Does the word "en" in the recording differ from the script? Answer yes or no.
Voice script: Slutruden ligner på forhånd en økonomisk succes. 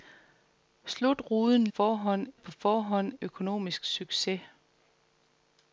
yes